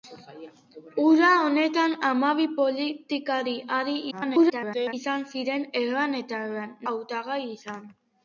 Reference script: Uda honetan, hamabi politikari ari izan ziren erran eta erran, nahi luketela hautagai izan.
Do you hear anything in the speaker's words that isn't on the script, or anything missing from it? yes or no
yes